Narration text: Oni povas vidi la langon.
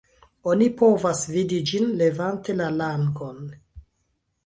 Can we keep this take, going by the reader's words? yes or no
no